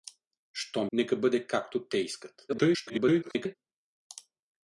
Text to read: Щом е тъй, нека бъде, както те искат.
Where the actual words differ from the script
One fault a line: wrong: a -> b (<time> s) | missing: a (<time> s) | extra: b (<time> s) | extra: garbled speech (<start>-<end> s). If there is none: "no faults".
missing: е тъй (0.9 s)
extra: garbled speech (2.5-3.6 s)